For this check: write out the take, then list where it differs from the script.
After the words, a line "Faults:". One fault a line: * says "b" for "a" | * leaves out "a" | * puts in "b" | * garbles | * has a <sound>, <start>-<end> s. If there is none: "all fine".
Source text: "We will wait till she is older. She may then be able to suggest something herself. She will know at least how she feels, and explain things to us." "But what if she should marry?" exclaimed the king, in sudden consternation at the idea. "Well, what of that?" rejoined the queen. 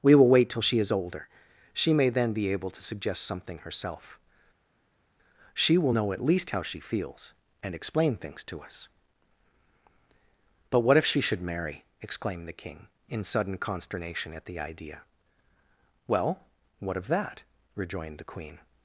"We will wait till she is older. She may then be able to suggest something herself. She will know at least how she feels, and explain things to us." "But what if she should marry?" exclaimed the king, in sudden consternation at the idea. "Well, what of that?" rejoined the queen.
Faults:
all fine